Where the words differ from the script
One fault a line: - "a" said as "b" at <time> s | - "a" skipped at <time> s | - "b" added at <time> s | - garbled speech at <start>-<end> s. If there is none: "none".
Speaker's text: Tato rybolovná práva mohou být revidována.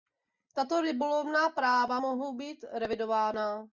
none